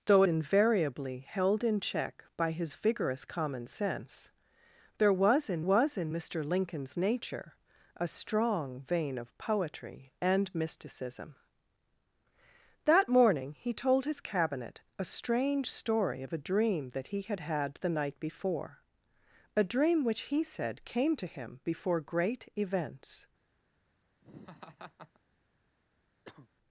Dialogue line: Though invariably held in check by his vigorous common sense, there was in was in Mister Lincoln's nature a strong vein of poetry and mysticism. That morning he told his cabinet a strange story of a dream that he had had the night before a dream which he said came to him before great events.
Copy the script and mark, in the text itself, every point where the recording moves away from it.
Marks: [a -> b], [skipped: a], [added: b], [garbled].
Though invariably held in check by his vigorous common sense, there was in was in Mister Lincoln's nature a strong vein of poetry and mysticism. That morning he told his cabinet a strange story of a dream that he had had the night before a dream which he said came to him before great events.